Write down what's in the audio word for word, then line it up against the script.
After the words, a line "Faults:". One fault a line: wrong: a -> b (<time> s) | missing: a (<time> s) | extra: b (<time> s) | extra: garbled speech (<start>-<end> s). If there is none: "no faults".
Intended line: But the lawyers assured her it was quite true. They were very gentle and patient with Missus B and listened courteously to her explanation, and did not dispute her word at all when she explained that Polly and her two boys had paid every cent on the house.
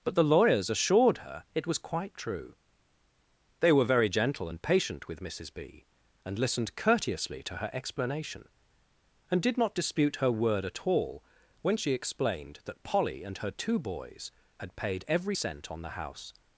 But the lawyers assured her it was quite true. They were very gentle and patient with Missus B and listened courteously to her explanation, and did not dispute her word at all when she explained that Polly and her two boys had paid every cent on the house.
Faults:
no faults